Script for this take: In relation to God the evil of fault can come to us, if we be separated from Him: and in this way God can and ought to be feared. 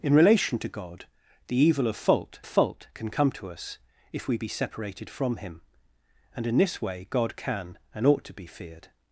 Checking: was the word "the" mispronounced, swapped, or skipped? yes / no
no